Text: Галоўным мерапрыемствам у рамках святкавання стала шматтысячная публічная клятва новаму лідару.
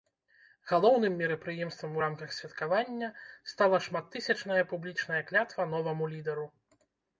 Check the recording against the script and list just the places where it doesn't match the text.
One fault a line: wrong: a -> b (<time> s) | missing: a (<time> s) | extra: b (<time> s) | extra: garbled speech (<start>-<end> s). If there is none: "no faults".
no faults